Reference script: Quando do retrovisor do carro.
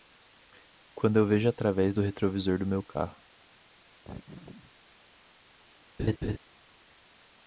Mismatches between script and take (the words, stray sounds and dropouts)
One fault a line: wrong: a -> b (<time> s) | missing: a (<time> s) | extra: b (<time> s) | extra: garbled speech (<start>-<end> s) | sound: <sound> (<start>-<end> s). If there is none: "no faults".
extra: eu vejo através (1.2 s)
extra: meu (2.6 s)
sound: laugh (4.0-4.7 s)
sound: laugh (6.0-6.4 s)